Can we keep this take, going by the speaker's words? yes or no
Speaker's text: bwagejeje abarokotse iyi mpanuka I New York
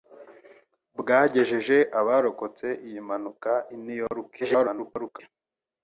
no